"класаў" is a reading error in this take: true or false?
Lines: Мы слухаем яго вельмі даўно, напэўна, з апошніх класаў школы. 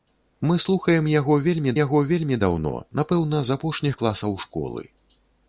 false